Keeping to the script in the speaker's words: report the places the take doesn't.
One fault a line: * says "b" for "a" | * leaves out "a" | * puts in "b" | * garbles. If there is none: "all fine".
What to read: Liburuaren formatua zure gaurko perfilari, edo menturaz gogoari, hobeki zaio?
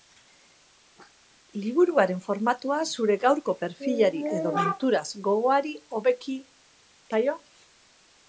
all fine